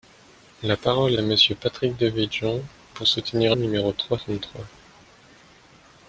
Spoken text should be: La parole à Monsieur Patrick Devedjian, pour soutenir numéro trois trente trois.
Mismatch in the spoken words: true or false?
false